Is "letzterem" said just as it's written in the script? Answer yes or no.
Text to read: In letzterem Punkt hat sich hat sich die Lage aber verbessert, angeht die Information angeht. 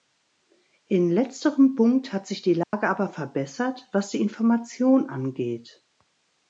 yes